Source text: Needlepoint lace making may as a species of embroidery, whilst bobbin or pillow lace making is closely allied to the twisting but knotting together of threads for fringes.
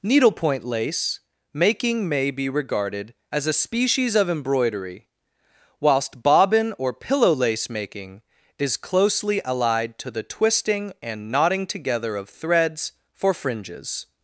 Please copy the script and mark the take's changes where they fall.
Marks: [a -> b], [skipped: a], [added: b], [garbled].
Needlepoint lace making may [added: be regarded] as a species of embroidery, whilst bobbin or pillow lace making is closely allied to the twisting [but -> and] knotting together of threads for fringes.